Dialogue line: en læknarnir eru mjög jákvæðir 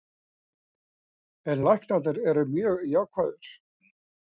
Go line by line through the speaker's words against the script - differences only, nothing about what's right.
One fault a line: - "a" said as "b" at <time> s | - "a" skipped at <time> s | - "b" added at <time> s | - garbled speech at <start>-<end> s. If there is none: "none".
none